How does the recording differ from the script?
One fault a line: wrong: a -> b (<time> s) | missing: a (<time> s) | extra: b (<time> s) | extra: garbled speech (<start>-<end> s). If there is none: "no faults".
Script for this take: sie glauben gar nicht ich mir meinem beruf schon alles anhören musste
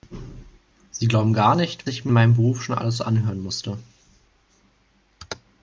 no faults